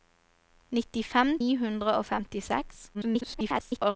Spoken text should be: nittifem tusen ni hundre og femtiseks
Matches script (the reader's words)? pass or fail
fail